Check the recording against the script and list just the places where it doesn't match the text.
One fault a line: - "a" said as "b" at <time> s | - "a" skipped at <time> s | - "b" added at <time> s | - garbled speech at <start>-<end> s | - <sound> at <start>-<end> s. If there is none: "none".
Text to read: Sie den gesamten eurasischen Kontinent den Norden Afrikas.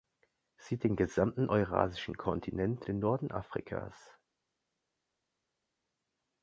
none